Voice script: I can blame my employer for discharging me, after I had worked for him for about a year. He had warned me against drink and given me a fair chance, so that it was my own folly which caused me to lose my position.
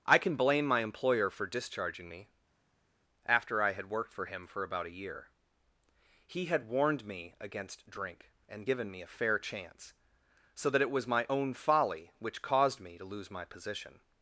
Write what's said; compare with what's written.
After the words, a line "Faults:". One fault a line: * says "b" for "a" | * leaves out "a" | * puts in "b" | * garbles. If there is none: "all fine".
I can blame my employer for discharging me, after I had worked for him for about a year. He had warned me against drink and given me a fair chance, so that it was my own folly which caused me to lose my position.
Faults:
all fine